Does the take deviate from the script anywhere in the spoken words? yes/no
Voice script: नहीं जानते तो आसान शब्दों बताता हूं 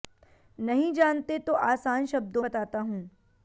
no